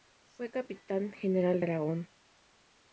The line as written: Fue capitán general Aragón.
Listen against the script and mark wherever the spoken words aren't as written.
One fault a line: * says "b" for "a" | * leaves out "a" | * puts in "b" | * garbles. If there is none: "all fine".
all fine